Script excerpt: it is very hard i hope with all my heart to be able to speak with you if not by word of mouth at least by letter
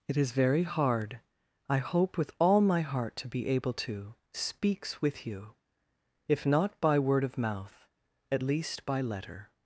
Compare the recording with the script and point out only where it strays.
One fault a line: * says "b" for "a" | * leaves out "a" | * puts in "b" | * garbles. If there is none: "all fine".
* says "speaks" for "speak"